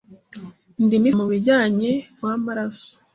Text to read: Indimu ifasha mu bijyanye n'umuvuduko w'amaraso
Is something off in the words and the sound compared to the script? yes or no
yes